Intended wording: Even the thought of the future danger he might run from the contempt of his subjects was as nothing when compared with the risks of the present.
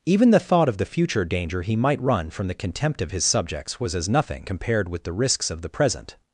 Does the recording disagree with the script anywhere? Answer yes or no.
yes